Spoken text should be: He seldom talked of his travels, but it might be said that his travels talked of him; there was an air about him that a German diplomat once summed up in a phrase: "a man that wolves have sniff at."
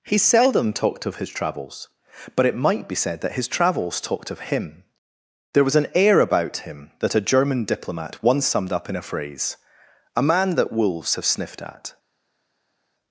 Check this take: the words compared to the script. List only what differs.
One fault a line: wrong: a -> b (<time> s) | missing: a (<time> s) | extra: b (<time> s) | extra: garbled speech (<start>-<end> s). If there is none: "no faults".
wrong: sniff -> sniffed (11.2 s)